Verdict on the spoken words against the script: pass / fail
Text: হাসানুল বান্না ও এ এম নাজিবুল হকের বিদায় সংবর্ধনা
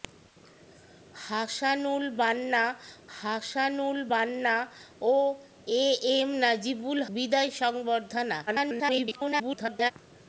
fail